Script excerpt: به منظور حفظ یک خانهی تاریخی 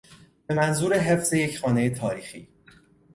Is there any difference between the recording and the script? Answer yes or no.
no